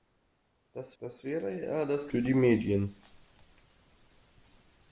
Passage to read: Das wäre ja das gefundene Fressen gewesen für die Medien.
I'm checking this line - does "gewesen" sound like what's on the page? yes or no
no